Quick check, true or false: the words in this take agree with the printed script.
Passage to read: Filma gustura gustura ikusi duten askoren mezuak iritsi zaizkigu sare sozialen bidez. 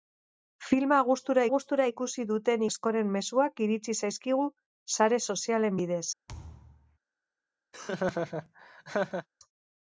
true